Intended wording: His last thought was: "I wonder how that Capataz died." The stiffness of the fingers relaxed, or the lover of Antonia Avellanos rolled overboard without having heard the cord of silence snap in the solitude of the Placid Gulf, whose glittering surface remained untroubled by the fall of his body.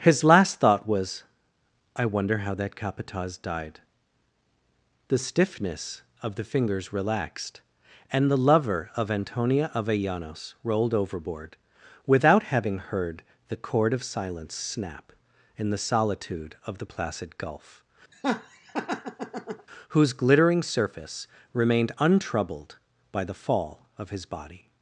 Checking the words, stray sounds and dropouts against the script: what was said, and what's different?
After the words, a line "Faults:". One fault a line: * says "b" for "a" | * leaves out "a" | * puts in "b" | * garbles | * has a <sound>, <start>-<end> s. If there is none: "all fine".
His last thought was: "I wonder how that Capataz died." The stiffness of the fingers relaxed, and the lover of Antonia Avellanos rolled overboard without having heard the cord of silence snap in the solitude of the Placid Gulf, whose glittering surface remained untroubled by the fall of his body.
Faults:
* says "and" for "or"
* has a laugh, 18.1-19.7 s